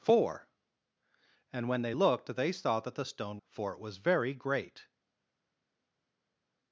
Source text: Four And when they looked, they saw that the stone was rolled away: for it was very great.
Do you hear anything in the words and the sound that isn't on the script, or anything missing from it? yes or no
yes